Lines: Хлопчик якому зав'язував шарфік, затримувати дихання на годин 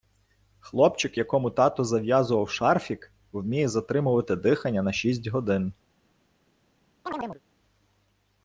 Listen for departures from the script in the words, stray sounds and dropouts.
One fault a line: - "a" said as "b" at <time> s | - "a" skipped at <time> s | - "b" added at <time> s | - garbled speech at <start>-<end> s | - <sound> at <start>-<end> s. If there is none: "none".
- "тато" added at 1.5 s
- "вміє" added at 3.3 s
- "шість" added at 4.9 s
- chirp at 7.1-7.4 s